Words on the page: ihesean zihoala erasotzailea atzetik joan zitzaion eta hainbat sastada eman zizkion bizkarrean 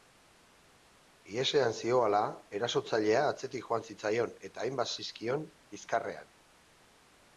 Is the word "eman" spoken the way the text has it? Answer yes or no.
no